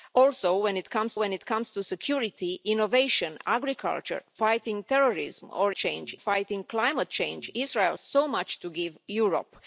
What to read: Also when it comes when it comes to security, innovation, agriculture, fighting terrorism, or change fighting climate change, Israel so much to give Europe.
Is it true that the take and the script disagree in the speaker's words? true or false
false